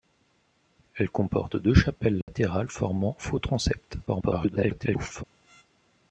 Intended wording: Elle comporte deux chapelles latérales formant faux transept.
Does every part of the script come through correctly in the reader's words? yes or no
no